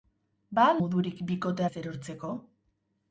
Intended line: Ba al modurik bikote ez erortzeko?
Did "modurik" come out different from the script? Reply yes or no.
no